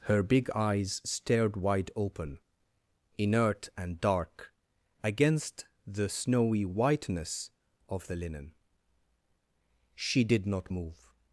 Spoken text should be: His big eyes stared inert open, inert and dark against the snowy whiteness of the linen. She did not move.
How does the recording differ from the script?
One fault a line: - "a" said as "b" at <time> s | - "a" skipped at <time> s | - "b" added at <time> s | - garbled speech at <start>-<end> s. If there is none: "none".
- "His" said as "Her" at 0.1 s
- "inert" said as "wide" at 1.6 s